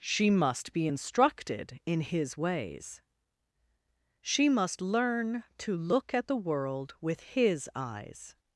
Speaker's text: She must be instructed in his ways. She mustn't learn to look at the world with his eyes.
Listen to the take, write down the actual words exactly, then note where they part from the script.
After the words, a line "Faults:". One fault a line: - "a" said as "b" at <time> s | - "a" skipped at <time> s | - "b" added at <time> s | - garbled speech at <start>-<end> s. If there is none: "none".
She must be instructed in his ways. She must learn to look at the world with his eyes.
Faults:
- "mustn't" said as "must" at 4.5 s